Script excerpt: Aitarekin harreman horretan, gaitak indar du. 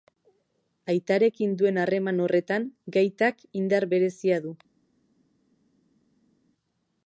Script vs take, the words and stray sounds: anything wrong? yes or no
yes